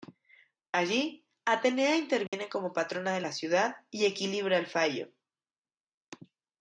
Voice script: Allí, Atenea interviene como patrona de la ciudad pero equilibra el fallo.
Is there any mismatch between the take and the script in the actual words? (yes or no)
yes